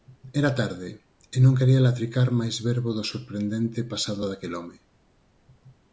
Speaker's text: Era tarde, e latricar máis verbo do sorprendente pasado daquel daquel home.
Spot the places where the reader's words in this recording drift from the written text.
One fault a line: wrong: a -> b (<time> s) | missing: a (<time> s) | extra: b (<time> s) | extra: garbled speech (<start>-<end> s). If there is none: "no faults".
extra: non quería (1.4 s)
missing: daquel (4.5 s)